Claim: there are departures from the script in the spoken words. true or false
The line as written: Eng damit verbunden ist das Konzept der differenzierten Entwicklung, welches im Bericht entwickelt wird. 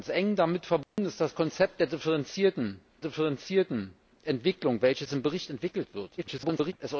true